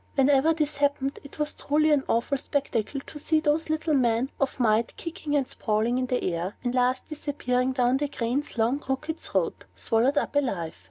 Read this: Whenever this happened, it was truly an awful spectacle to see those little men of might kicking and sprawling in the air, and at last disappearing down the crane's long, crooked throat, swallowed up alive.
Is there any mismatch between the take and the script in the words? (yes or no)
yes